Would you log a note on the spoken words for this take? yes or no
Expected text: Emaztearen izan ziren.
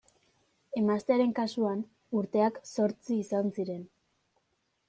yes